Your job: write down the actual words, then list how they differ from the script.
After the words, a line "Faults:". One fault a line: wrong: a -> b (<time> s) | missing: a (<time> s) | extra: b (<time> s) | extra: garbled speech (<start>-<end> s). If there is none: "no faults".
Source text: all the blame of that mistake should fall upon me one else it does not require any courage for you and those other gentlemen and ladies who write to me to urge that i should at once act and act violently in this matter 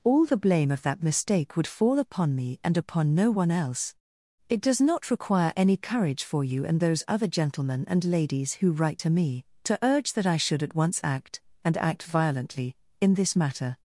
all the blame of that mistake would fall upon me and upon no one else it does not require any courage for you and those other gentlemen and ladies who write to me to urge that i should at once act and act violently in this matter
Faults:
wrong: should -> would (1.6 s)
extra: and upon no (2.6 s)